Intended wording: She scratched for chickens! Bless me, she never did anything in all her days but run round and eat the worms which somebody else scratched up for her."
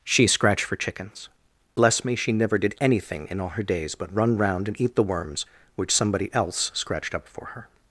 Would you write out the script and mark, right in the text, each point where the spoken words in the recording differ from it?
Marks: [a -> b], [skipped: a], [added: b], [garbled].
She scratched for chickens! Bless me, she never did anything in all her days but run round and eat the worms which somebody else scratched up for her."